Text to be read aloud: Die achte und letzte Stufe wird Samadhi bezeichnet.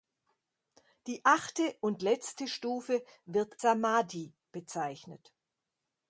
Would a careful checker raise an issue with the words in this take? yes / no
no